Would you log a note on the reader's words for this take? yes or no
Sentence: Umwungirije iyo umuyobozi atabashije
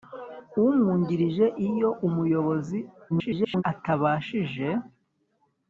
yes